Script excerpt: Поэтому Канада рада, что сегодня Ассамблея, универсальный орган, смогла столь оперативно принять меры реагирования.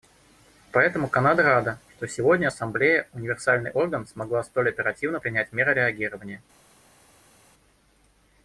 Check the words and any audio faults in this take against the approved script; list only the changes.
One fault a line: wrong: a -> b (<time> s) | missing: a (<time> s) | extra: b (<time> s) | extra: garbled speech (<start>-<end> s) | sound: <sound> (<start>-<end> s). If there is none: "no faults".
no faults